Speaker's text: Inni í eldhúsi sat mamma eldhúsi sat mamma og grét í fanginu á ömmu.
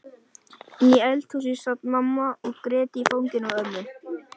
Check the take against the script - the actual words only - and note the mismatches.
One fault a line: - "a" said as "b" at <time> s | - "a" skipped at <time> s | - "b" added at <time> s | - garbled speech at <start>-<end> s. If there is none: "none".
- "eldhúsi sat mamma" skipped at 2.3 s